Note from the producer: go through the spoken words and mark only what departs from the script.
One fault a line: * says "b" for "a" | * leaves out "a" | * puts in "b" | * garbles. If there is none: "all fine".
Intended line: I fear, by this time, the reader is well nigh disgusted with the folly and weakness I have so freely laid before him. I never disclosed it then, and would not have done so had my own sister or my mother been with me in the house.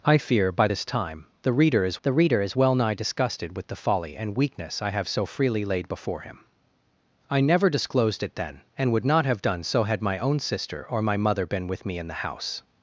* puts in "the reader is"